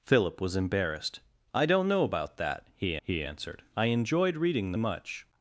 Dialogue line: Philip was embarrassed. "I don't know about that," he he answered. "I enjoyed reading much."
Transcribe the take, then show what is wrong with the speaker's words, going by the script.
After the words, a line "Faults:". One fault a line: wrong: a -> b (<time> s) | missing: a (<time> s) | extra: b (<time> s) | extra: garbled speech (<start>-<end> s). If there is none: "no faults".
Philip was embarrassed. "I don't know about that," he he answered. "I enjoyed reading much."
Faults:
no faults